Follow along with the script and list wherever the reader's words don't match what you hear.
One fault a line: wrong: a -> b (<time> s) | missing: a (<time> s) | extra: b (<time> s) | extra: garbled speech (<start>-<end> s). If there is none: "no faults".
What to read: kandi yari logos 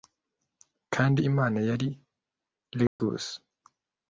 extra: imana (1.3 s)